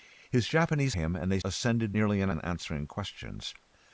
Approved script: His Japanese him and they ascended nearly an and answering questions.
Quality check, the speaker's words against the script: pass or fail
pass